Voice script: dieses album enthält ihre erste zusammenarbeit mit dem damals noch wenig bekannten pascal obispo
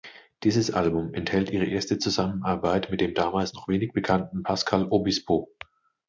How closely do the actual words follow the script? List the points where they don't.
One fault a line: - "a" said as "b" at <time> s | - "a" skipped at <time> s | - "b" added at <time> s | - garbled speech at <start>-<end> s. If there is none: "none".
none